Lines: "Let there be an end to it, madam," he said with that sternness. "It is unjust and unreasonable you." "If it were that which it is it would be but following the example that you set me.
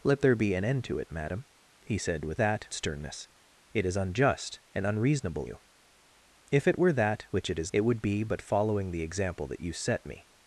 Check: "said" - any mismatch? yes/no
no